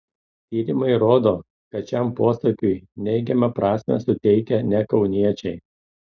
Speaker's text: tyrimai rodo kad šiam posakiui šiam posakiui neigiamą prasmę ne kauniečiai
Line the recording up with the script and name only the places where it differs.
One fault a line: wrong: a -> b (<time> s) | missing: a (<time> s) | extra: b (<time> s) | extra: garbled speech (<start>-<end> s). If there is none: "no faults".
missing: šiam posakiui (2.7 s)
extra: suteikia (4.1 s)